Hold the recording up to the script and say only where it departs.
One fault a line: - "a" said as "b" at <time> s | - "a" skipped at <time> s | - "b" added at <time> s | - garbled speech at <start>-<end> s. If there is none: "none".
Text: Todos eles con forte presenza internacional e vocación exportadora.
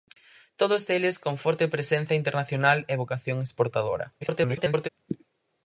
- garbled speech at 4.2-4.9 s